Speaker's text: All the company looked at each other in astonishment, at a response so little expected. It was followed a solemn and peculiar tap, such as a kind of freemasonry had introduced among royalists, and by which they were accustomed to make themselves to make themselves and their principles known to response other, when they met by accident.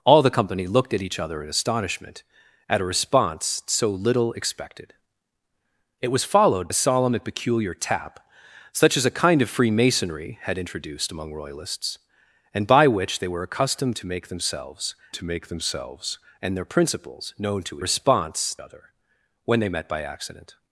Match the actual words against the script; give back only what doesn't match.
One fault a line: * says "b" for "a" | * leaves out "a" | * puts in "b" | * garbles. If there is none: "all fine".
all fine